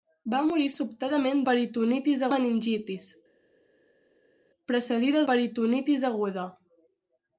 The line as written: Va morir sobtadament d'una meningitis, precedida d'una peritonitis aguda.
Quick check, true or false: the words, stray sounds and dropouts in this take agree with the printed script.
false